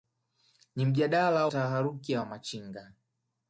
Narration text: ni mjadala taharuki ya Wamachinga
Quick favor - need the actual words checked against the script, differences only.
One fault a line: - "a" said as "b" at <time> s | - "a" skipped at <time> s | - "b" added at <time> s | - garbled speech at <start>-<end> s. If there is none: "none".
none